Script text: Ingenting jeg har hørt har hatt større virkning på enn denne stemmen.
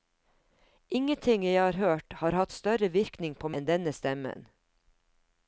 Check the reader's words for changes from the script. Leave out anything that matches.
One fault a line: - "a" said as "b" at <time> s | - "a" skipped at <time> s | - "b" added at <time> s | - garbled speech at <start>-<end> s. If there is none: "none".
none